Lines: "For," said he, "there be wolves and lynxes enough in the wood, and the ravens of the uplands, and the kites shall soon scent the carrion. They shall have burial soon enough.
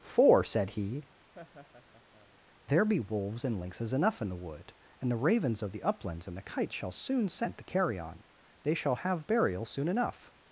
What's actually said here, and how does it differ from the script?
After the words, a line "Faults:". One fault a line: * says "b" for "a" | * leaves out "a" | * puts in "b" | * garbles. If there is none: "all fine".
"For," said he, "there be wolves and lynxes enough in the wood, and the ravens of the uplands, and the kites shall soon scent the carrion. They shall have burial soon enough.
Faults:
all fine